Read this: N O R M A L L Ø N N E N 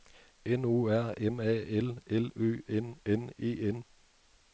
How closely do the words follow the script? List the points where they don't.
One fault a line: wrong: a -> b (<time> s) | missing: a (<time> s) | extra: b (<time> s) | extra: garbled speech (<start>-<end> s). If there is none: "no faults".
no faults